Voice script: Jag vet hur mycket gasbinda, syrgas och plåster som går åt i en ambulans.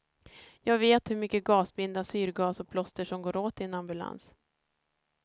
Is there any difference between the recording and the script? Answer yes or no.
no